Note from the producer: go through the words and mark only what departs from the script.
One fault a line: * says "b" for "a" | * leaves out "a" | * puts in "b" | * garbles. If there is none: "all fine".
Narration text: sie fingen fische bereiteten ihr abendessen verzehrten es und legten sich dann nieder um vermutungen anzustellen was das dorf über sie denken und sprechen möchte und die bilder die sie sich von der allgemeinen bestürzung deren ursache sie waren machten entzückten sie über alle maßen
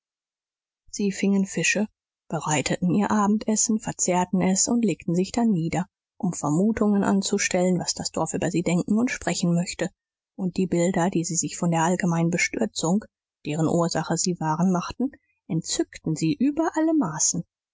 all fine